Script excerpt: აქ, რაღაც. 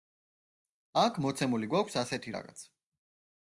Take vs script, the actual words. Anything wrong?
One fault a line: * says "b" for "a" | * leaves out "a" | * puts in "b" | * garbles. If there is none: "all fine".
* puts in "მოცემული გვაქვს ასეთი"